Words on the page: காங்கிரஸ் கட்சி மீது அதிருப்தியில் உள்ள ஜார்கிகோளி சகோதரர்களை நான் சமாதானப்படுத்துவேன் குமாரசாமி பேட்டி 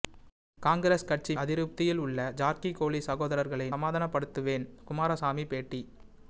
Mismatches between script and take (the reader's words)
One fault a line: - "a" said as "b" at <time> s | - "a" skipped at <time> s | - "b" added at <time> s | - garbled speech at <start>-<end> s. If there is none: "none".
- "மீது" skipped at 1.3 s
- "நான்" skipped at 3.7 s